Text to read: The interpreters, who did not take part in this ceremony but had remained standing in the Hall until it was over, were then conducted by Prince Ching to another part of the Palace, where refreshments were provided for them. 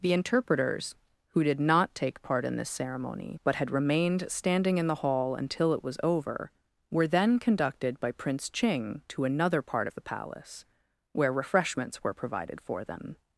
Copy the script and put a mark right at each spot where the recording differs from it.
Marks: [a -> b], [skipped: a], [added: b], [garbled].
The interpreters, who did not take part in this ceremony but had remained standing in the Hall until it was over, were then conducted by Prince Ching to another part of the Palace, where refreshments were provided for them.